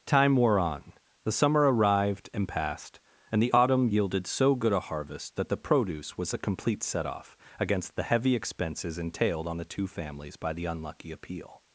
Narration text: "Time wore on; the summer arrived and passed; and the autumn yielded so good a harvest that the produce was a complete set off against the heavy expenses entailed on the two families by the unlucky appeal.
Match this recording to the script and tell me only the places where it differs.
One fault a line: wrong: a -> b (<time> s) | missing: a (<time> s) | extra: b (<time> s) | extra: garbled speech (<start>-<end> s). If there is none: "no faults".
no faults